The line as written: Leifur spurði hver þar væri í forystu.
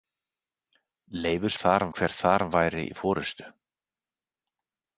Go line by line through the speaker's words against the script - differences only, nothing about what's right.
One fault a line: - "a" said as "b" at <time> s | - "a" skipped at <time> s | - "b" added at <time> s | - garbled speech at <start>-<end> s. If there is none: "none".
- "spurði" said as "þar" at 1.6 s